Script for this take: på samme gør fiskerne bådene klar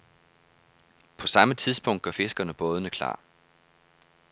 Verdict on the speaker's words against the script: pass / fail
fail